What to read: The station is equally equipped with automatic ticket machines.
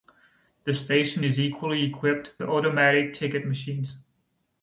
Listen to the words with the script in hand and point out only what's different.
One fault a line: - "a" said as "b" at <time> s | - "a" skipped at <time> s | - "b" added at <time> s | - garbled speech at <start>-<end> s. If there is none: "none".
- "with" skipped at 2.3 s